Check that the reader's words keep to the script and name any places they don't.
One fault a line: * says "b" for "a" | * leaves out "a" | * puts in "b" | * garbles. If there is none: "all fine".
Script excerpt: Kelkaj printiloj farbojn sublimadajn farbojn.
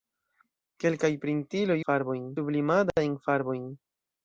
all fine